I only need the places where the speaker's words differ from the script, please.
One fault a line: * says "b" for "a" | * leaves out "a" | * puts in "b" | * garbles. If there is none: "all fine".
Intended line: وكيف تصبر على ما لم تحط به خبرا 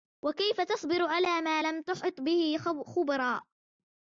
all fine